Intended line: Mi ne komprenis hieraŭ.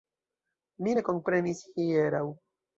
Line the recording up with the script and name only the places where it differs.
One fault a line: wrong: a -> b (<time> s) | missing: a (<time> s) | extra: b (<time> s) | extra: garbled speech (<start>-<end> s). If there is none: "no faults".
no faults